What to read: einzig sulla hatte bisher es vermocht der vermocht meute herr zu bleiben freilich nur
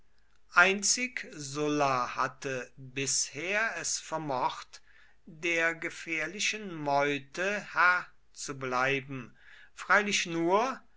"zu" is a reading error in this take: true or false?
false